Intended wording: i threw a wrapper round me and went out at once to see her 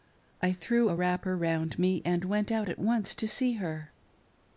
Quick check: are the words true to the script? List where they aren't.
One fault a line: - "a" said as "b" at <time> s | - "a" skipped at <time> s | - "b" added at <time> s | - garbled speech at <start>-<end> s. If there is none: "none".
none